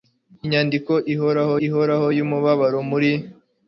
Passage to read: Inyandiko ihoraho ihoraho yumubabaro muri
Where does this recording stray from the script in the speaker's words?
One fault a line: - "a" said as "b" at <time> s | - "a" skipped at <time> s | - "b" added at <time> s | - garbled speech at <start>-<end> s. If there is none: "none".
none